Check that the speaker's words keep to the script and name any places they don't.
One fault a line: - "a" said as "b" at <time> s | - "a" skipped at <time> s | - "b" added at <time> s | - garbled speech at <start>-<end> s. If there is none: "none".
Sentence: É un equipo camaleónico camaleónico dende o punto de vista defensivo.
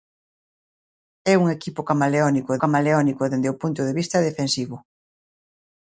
none